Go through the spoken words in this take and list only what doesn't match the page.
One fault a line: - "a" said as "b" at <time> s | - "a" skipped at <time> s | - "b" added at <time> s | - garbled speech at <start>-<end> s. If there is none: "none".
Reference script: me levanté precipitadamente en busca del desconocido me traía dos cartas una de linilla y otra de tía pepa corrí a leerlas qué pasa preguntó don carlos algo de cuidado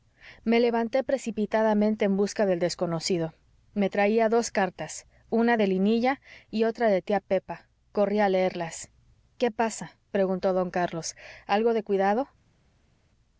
none